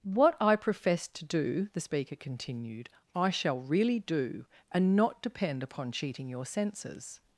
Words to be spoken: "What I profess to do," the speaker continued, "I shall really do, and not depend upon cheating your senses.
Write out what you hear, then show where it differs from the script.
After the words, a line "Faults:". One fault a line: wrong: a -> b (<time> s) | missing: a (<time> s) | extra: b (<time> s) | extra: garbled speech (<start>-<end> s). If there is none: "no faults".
"What I profess to do," the speaker continued, "I shall really do, and not depend upon cheating your senses.
Faults:
no faults